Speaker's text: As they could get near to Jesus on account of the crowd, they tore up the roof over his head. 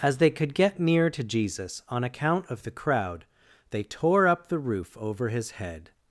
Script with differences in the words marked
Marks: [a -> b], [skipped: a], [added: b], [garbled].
As they could get near to Jesus on account of the crowd, they tore up the roof over his head.